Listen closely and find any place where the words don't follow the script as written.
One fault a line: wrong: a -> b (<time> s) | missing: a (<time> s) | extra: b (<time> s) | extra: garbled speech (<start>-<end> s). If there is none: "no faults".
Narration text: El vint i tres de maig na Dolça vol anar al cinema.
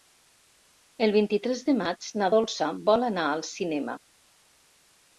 no faults